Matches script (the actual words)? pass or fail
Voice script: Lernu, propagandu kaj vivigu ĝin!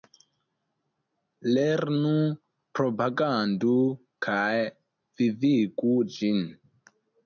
pass